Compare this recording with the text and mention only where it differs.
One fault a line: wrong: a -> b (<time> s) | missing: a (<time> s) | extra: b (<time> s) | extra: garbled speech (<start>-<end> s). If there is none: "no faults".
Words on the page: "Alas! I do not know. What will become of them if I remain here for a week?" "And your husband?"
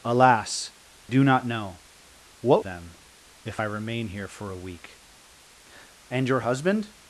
missing: I (0.7 s)
missing: will become of (2.7 s)